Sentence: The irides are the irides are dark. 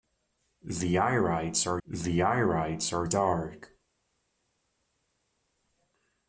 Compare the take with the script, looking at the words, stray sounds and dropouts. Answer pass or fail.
pass